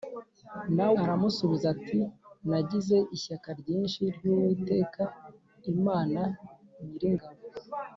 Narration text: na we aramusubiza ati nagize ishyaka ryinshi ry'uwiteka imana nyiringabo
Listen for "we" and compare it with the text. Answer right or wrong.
wrong